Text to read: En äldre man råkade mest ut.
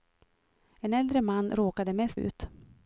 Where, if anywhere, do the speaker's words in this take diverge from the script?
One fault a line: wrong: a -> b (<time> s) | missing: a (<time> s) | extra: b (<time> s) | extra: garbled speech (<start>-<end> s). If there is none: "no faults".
no faults